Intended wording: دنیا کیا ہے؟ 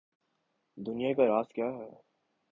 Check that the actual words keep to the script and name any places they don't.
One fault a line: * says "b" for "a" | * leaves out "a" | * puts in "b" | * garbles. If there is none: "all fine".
* puts in "کا راز"